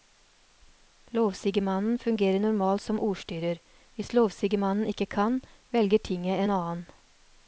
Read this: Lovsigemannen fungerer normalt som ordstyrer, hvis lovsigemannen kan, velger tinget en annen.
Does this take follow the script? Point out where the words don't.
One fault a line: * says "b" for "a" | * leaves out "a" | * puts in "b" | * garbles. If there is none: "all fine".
* puts in "ikke"